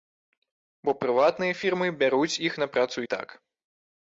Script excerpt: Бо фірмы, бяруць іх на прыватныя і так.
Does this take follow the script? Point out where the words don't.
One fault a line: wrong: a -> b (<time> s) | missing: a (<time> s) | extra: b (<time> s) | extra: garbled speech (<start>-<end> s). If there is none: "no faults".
extra: прыватныя (1.0 s)
wrong: прыватныя -> працу (2.8 s)